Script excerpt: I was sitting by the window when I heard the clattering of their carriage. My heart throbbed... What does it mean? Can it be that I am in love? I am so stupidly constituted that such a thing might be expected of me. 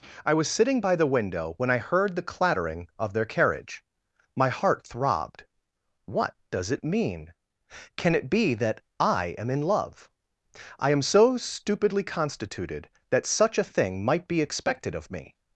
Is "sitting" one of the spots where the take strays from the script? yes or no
no